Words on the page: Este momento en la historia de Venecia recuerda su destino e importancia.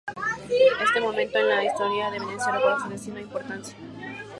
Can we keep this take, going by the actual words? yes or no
yes